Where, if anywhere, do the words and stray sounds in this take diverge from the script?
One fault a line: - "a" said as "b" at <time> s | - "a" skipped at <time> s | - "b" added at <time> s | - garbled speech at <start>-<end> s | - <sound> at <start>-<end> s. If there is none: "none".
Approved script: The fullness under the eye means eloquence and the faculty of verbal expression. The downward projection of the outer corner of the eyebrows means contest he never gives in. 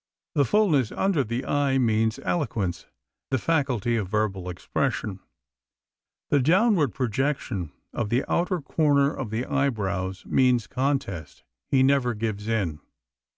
- "and" skipped at 2.9 s